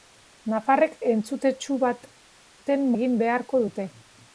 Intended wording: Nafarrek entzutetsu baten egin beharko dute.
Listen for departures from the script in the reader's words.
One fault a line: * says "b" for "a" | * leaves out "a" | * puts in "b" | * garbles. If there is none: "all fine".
all fine